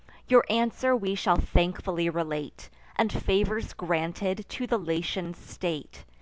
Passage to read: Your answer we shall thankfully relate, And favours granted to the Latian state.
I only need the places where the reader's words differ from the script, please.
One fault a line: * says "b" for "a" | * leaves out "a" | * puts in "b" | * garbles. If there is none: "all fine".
all fine